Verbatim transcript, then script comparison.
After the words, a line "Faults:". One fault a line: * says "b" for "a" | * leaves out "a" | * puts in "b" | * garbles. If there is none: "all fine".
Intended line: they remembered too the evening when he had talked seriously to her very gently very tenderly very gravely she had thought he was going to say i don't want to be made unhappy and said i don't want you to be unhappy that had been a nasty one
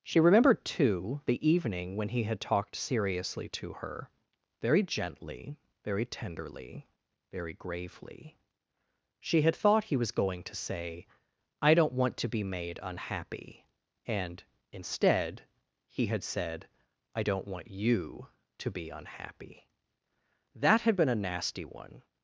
she remembered too the evening when he had talked seriously to her very gently very tenderly very gravely she had thought he was going to say i don't want to be made unhappy and instead he had said i don't want you to be unhappy that had been a nasty one
Faults:
* says "she" for "they"
* puts in "instead he had"